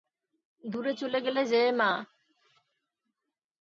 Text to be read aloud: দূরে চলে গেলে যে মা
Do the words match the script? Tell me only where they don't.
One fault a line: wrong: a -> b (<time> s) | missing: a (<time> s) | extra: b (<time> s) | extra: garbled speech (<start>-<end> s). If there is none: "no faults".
no faults